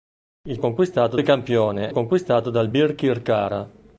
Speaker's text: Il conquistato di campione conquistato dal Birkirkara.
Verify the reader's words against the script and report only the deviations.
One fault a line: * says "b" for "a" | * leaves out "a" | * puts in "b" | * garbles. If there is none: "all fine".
all fine